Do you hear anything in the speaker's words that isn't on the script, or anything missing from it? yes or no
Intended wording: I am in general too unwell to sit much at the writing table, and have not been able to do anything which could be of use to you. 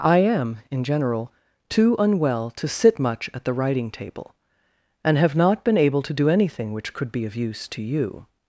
no